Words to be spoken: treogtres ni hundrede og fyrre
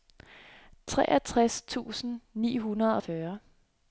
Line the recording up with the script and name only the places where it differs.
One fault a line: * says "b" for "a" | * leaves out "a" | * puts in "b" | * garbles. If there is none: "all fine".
* puts in "tusind"